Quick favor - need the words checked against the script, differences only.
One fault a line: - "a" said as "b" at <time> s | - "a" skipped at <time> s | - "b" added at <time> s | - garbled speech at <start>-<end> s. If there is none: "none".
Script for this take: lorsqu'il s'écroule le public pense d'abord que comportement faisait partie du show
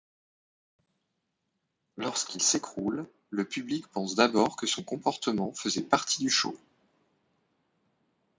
- "son" added at 4.6 s